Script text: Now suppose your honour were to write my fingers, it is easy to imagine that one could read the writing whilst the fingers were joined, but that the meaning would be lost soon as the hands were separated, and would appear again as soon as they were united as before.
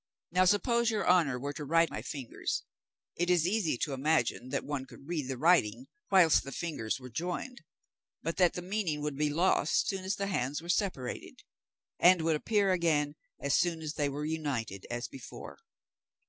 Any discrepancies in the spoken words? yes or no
no